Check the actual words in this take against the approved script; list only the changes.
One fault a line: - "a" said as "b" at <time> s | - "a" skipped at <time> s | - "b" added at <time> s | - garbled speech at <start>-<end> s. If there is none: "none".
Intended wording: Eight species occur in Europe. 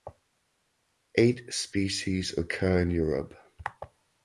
none